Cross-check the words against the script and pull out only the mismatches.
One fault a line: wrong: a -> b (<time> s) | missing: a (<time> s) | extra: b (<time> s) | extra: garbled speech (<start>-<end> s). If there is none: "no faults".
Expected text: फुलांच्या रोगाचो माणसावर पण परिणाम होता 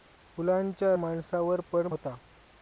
missing: रोगाचो (0.9 s)
missing: परिणाम (1.9 s)